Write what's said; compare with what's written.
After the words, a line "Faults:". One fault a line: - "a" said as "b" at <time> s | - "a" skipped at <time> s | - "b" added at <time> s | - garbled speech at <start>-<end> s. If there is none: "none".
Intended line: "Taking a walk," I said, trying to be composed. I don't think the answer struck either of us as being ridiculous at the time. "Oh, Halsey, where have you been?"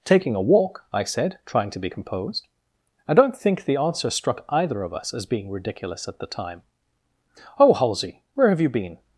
"Taking a walk," I said, trying to be composed. I don't think the answer struck either of us as being ridiculous at the time. "Oh, Halsey, where have you been?"
Faults:
none